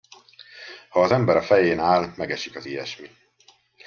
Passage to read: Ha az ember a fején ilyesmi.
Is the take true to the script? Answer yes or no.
no